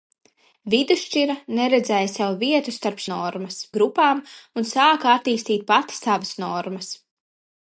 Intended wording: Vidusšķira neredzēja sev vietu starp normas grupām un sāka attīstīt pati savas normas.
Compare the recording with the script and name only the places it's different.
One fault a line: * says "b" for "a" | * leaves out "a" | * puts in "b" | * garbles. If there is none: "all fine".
all fine